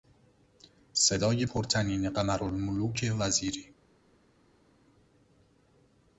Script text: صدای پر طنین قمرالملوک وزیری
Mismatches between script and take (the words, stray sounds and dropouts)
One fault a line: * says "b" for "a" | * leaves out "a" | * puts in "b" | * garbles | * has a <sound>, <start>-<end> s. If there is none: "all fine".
all fine